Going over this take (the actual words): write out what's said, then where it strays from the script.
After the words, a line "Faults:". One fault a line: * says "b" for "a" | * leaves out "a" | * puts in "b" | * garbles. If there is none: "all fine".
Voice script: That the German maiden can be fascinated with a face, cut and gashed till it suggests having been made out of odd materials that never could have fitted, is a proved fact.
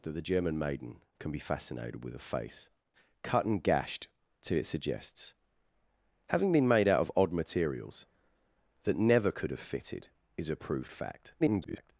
That the German maiden can be fascinated with a face, cut and gashed till it suggests having been made out of odd materials that never could have fitted, is a proved fact. [garbled]
Faults:
* garbles